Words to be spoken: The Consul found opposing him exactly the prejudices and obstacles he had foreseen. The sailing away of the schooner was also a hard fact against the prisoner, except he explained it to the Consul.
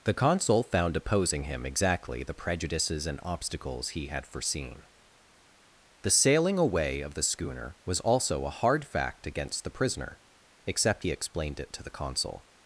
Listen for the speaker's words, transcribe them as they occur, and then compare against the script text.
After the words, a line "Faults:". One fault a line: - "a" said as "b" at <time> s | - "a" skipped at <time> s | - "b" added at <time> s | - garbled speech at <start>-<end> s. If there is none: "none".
The Consul found opposing him exactly the prejudices and obstacles he had foreseen. The sailing away of the schooner was also a hard fact against the prisoner, except he explained it to the Consul.
Faults:
none